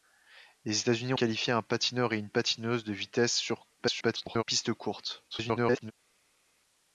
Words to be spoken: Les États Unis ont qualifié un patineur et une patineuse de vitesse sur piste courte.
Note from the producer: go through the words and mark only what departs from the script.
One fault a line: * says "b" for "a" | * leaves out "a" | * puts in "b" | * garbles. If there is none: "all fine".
* leaves out "ont"
* garbles
* garbles